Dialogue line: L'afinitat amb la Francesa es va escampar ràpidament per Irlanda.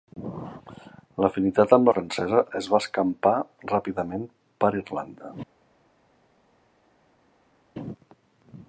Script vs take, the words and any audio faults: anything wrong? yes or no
no